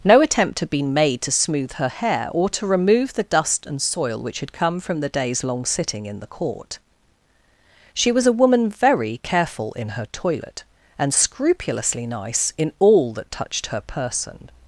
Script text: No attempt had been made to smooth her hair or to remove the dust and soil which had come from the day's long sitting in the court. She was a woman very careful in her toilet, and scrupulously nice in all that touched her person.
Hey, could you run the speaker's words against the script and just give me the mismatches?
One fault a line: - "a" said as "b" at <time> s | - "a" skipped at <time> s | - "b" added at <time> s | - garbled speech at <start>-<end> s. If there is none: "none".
none